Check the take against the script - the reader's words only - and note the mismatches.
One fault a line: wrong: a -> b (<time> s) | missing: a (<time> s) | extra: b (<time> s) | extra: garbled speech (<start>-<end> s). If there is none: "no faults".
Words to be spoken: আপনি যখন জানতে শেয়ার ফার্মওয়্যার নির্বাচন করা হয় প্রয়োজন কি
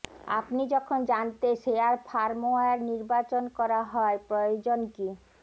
no faults